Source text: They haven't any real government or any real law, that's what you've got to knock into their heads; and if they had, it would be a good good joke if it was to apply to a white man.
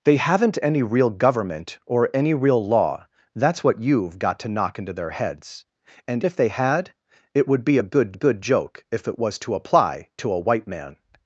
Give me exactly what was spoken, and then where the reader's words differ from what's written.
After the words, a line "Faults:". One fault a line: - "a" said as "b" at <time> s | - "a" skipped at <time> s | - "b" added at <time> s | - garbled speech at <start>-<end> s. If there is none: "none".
They haven't any real government or any real law, that's what you've got to knock into their heads; and if they had, it would be a good good joke if it was to apply to a white man.
Faults:
none